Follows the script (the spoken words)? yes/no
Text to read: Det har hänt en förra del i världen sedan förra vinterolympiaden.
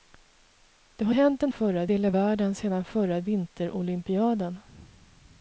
yes